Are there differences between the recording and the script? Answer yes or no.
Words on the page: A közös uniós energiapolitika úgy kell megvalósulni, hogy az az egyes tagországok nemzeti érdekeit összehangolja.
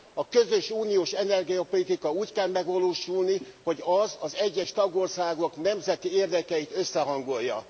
no